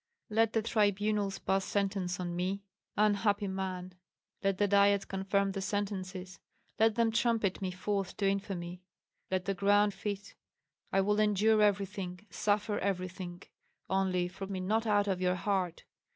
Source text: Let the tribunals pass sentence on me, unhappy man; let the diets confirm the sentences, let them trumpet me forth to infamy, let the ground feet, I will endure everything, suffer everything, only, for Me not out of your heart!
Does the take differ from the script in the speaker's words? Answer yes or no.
no